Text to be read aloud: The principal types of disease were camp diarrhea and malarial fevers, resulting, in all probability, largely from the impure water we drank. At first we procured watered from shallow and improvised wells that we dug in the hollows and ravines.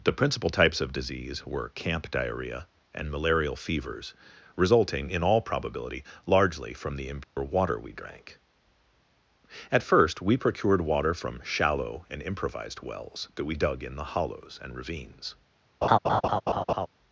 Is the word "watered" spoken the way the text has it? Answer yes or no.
no